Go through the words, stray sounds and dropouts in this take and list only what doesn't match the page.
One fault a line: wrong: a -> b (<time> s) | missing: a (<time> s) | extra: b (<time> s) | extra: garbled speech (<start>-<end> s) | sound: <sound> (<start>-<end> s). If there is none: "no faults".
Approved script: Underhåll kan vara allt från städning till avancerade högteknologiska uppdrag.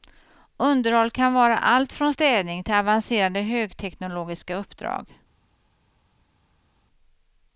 no faults